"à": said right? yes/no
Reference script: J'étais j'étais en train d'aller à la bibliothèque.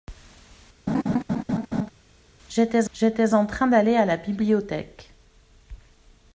yes